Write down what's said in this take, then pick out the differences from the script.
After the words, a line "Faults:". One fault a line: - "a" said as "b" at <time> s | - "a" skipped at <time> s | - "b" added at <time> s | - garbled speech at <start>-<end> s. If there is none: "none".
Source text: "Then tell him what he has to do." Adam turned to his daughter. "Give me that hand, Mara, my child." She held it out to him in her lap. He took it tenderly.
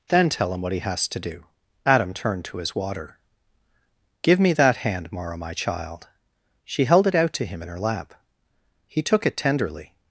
"Then tell him what he has to do." Adam turned to his water. "Give me that hand, Mara, my child." She held it out to him in her lap. He took it tenderly.
Faults:
- "daughter" said as "water" at 2.8 s